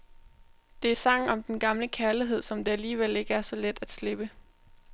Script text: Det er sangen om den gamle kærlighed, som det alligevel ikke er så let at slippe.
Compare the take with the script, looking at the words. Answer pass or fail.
pass